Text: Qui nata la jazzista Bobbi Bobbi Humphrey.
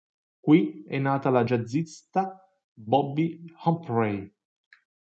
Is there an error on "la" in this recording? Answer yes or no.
no